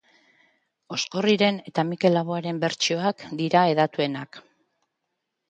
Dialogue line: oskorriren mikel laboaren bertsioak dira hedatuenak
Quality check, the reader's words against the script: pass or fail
fail